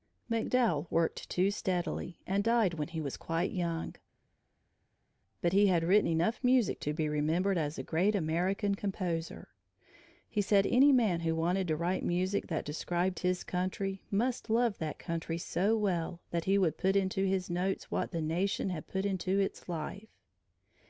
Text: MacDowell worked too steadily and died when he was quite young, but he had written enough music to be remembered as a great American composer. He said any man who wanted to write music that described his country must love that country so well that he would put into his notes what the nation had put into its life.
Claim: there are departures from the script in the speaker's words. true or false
false